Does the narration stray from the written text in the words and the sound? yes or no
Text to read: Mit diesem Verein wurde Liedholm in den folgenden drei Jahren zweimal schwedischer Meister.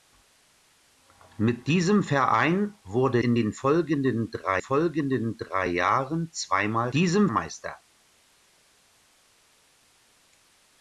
yes